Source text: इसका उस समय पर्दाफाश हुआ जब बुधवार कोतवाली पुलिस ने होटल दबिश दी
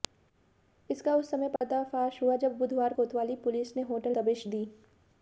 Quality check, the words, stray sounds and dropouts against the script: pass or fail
fail